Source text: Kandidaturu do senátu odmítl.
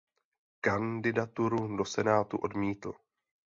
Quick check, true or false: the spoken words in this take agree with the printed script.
true